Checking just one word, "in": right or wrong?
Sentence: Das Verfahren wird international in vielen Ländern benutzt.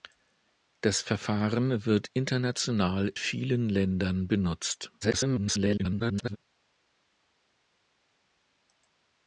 wrong